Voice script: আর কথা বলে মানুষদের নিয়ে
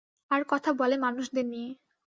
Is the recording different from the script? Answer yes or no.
no